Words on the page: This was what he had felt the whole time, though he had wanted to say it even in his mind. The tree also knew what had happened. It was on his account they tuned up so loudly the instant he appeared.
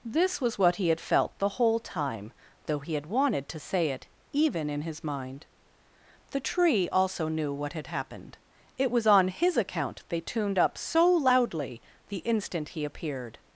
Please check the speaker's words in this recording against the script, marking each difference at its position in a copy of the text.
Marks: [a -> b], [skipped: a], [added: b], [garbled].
This was what he had felt the whole time, though he had wanted to say it even in his mind. The tree also knew what had happened. It was on his account they tuned up so loudly the instant he appeared.